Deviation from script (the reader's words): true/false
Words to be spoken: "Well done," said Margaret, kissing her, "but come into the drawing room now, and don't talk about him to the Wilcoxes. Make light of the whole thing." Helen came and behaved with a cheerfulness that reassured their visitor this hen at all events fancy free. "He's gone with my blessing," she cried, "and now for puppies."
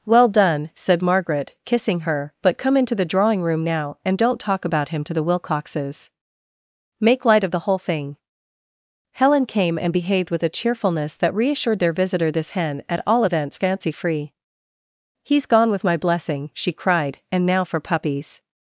false